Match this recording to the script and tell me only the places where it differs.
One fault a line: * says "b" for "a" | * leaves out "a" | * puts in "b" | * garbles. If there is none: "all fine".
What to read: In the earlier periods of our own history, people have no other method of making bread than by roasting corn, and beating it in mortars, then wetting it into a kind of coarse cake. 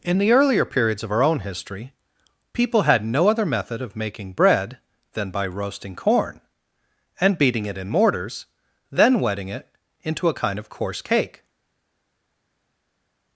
* says "had" for "have"